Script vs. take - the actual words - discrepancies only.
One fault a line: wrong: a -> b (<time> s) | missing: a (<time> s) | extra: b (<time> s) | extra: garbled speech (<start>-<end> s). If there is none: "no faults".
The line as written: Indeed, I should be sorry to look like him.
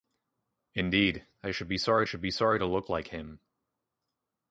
extra: should be sorry (2.0 s)